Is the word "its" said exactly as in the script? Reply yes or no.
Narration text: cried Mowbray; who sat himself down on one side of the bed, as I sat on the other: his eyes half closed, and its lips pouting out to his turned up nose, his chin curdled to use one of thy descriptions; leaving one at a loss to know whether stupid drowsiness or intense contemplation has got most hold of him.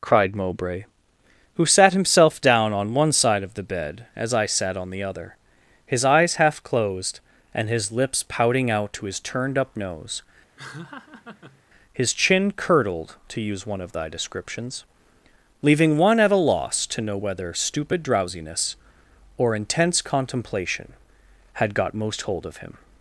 no